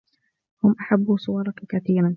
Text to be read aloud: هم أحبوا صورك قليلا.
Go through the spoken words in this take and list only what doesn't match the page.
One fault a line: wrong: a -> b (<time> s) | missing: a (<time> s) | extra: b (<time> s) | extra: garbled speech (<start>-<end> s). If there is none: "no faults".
wrong: قليلا -> كثيرا (1.7 s)